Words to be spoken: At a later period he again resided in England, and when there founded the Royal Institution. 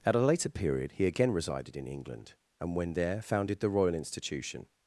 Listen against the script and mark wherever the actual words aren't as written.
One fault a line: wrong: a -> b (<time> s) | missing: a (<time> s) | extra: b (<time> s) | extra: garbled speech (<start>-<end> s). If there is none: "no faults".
no faults